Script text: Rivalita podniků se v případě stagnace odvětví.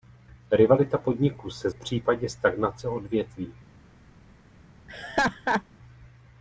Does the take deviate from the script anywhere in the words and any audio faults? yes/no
yes